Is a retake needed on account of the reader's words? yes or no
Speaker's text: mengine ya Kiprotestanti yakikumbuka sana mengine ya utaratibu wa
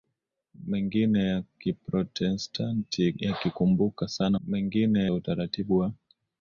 no